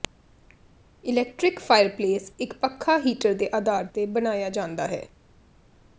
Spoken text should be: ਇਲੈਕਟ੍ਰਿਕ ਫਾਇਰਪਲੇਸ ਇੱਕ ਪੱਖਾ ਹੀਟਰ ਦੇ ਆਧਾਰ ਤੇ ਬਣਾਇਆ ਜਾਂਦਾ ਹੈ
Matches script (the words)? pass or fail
pass